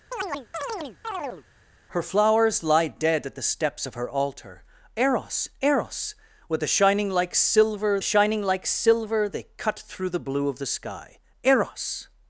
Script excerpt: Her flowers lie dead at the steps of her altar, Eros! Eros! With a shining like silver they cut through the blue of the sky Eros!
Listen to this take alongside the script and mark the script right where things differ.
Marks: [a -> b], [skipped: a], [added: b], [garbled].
Her flowers lie dead at the steps of her altar, Eros! Eros! With a shining like silver [added: shining like silver] they cut through the blue of the sky Eros!